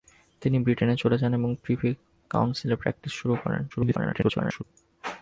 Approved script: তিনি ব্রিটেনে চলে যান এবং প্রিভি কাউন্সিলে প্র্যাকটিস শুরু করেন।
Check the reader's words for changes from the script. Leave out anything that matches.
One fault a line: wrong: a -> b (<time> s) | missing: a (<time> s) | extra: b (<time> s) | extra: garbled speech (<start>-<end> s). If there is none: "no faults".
extra: garbled speech (3.7-4.6 s)